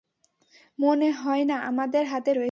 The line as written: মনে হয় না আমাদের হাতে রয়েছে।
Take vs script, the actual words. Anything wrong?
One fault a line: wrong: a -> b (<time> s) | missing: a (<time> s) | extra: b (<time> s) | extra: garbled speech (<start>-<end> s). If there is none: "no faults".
no faults